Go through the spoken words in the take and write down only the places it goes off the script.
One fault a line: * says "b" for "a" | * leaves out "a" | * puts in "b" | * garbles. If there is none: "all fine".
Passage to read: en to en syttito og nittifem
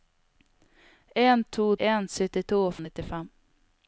all fine